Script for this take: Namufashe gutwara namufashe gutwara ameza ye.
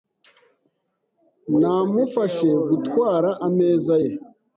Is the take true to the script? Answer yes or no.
no